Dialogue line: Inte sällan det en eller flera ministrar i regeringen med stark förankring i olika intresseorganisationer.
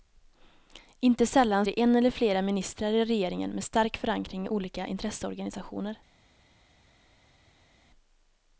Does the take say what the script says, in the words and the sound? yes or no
yes